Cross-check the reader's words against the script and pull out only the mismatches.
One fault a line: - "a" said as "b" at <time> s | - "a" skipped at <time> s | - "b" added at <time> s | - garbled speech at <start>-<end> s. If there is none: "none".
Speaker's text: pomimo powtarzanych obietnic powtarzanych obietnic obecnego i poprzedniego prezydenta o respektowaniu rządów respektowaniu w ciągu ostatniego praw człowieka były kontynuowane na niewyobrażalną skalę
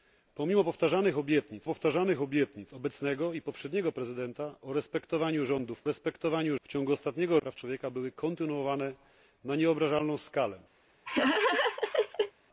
none